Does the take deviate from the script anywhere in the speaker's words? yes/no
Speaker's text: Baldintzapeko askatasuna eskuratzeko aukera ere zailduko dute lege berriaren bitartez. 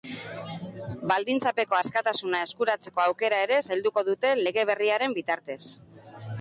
no